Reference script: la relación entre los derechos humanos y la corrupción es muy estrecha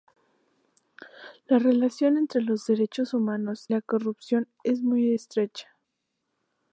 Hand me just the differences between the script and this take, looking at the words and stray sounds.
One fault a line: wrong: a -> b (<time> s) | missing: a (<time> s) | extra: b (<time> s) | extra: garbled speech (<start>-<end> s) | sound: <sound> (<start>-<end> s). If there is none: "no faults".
missing: y (3.7 s)